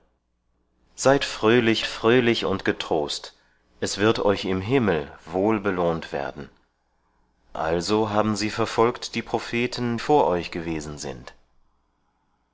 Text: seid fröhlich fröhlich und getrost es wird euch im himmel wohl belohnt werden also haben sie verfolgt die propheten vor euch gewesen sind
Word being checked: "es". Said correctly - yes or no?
yes